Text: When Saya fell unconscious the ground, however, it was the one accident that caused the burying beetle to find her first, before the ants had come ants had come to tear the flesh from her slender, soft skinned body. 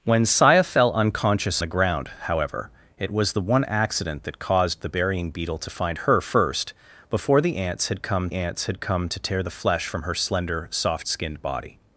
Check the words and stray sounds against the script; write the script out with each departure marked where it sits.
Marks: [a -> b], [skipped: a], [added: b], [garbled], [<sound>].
When Saya fell unconscious the ground, however, it was the one accident that caused the burying beetle to find her first, before the ants had come ants had come to tear the flesh from her slender, soft skinned body.